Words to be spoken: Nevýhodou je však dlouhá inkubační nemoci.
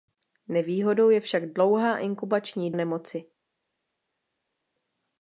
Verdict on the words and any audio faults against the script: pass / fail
pass